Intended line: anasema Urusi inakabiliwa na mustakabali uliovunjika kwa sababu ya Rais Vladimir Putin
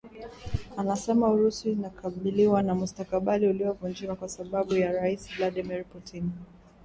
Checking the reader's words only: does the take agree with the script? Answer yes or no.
yes